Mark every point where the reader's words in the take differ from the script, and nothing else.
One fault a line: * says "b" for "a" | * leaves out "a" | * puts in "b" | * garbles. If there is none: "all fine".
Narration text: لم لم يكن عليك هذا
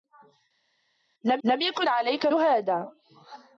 all fine